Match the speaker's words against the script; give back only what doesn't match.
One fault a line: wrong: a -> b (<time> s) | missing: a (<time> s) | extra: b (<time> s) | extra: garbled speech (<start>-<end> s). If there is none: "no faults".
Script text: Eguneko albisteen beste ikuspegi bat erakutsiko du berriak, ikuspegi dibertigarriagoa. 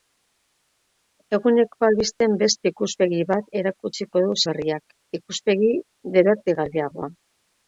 no faults